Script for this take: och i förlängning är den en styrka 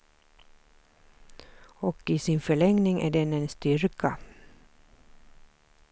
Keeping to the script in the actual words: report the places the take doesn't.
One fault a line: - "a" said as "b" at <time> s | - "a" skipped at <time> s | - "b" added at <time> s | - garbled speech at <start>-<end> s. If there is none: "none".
- "sin" added at 2.2 s